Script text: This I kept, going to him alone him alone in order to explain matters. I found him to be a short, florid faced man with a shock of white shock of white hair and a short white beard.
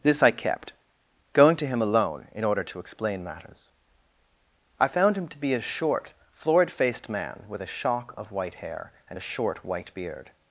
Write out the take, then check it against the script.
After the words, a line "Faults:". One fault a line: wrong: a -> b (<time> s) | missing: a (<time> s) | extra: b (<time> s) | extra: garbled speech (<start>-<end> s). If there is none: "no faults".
This I kept, going to him alone in order to explain matters. I found him to be a short, florid faced man with a shock of white hair and a short white beard.
Faults:
missing: him alone (2.2 s)
missing: shock of white (8.6 s)